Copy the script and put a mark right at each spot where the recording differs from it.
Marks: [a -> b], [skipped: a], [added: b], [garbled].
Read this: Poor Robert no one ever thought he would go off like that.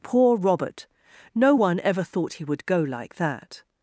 Poor Robert no one ever thought he would go [skipped: off] like that.